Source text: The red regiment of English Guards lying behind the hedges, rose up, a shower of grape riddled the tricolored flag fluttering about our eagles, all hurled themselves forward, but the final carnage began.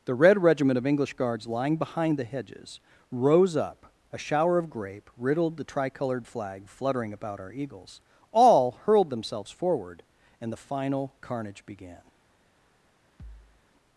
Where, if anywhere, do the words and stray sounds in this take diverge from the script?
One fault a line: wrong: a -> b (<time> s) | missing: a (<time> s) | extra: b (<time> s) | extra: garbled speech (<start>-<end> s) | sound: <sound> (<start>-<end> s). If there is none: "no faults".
wrong: but -> and (10.4 s)
sound: thud (13.2-13.6 s)